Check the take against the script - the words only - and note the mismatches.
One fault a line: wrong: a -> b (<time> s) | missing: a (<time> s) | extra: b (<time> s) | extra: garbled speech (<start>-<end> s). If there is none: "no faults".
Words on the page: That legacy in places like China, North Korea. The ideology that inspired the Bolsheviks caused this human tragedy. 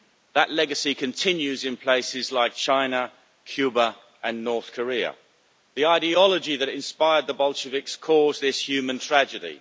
extra: continues (0.9 s)
extra: Cuba and (3.5 s)